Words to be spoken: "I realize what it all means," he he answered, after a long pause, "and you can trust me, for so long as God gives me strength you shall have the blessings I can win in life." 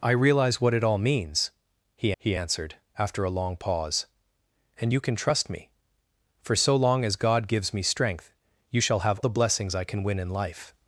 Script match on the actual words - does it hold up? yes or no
yes